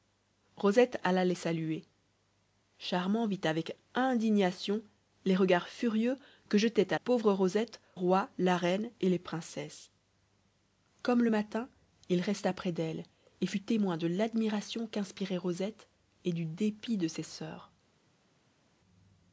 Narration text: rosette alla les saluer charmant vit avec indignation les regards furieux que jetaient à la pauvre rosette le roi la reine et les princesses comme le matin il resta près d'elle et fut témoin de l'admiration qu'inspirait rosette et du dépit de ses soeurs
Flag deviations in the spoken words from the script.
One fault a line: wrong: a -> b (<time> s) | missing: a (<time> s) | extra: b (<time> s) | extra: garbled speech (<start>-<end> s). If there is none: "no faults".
missing: la (7.0 s)
missing: le (7.8 s)